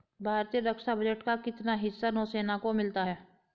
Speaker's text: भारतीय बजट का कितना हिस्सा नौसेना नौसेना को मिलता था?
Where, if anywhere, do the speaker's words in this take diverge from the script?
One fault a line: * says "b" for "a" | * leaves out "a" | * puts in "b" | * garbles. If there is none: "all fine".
* puts in "रक्षा"
* leaves out "नौसेना"
* says "है" for "था"